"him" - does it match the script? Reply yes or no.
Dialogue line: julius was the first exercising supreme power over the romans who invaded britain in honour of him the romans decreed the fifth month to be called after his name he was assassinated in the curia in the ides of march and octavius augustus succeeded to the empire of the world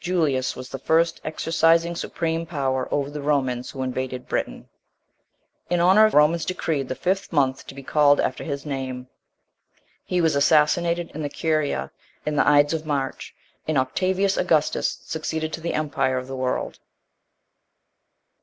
no